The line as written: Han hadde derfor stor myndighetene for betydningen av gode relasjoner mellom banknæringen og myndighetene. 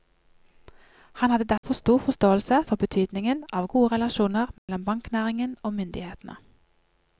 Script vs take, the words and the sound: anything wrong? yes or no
yes